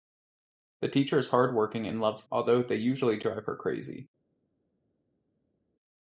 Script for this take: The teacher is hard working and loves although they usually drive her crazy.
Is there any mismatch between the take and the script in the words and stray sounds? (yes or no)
no